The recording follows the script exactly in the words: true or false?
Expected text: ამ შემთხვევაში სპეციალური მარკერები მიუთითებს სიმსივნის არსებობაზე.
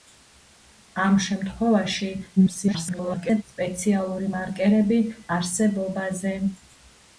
false